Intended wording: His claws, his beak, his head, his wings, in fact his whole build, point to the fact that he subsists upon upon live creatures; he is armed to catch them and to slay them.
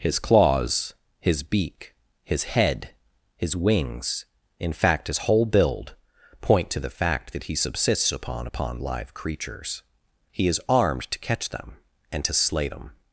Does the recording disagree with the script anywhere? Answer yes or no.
no